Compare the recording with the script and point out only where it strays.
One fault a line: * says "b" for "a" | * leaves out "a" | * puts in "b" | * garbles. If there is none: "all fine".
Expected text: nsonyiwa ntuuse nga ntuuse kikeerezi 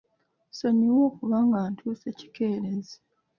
* says "okuba" for "ntuuse"